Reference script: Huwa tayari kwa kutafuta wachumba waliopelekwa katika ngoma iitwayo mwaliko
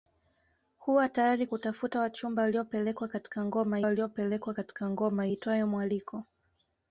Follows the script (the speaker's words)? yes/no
no